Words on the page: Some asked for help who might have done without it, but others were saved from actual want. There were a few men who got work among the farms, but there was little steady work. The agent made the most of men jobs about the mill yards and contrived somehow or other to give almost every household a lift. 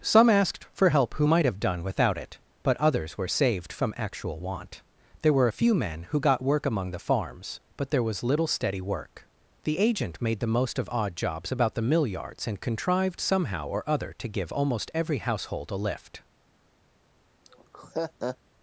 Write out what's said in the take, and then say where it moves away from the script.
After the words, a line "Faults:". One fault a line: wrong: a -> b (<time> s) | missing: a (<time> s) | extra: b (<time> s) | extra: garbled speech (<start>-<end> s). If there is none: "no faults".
Some asked for help who might have done without it, but others were saved from actual want. There were a few men who got work among the farms, but there was little steady work. The agent made the most of odd jobs about the mill yards and contrived somehow or other to give almost every household a lift.
Faults:
wrong: men -> odd (10.9 s)